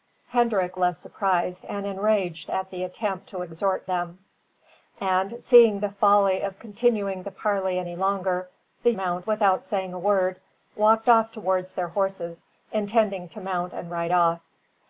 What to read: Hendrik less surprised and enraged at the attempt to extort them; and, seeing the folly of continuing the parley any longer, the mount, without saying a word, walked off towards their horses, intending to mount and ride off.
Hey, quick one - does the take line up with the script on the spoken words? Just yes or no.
yes